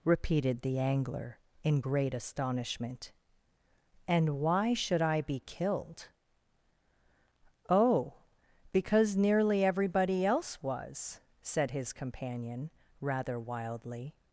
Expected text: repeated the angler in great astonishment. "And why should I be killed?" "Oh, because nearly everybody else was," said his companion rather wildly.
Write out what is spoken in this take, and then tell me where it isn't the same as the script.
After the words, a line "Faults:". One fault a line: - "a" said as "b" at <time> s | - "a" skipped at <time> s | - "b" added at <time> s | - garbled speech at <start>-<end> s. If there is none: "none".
repeated the angler in great astonishment. "And why should I be killed?" "Oh, because nearly everybody else was," said his companion rather wildly.
Faults:
none